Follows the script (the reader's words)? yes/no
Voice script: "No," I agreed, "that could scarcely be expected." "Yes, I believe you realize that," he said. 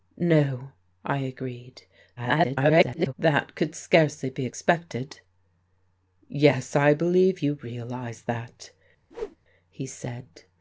no